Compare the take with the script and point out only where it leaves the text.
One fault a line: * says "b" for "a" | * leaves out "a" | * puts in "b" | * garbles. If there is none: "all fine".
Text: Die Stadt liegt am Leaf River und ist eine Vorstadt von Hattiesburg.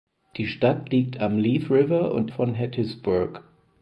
* leaves out "ist eine Vorstadt"